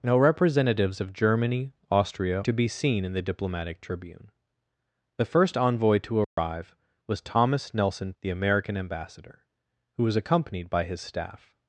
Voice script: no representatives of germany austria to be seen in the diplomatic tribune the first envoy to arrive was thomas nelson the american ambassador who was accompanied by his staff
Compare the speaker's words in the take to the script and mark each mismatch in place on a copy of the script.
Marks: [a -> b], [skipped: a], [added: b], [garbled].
no representatives of germany austria to be seen in the diplomatic tribune the first envoy to arrive was thomas nelson the american ambassador who was accompanied by his staff